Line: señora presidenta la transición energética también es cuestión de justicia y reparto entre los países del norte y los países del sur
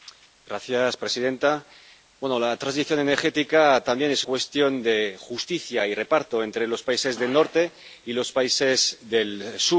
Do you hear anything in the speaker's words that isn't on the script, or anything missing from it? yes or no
no